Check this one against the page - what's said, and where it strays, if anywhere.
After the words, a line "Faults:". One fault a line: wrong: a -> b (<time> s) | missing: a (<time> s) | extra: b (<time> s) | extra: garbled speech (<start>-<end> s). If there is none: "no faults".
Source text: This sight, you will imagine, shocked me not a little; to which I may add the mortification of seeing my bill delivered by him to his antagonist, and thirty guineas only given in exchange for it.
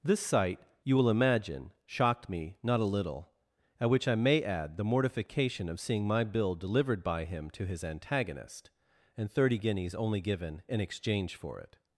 This sight, you will imagine, shocked me not a little; at which I may add the mortification of seeing my bill delivered by him to his antagonist, and thirty guineas only given in exchange for it.
Faults:
wrong: to -> at (3.8 s)